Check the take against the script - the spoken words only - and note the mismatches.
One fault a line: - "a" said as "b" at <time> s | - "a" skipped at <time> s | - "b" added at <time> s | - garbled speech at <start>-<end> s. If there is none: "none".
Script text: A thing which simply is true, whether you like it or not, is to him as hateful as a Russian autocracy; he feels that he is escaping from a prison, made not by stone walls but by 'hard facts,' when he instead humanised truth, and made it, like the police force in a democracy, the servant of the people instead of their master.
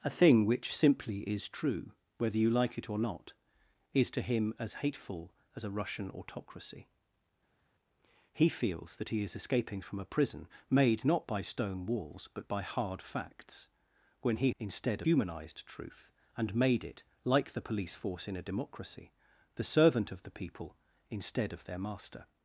none